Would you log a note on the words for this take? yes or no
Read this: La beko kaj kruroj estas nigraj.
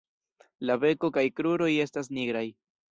no